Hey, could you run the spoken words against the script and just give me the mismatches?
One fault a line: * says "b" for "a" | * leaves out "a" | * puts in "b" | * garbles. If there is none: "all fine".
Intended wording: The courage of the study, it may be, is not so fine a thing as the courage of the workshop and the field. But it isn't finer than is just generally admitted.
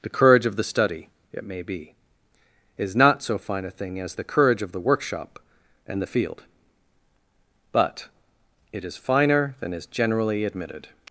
* says "is" for "isn't"
* leaves out "just"